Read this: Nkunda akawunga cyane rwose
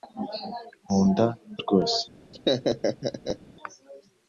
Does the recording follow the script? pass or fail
fail